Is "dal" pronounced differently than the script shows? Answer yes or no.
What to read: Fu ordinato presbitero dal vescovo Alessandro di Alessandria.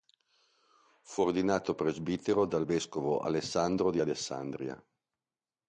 no